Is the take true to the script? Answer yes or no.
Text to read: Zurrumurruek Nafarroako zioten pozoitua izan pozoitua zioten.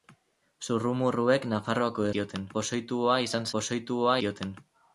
yes